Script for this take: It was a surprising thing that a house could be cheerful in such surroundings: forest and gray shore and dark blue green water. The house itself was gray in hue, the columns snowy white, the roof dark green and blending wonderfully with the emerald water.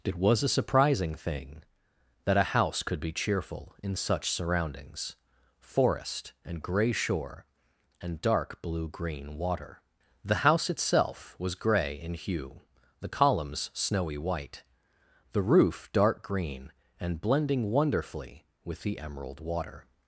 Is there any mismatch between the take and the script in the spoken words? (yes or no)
no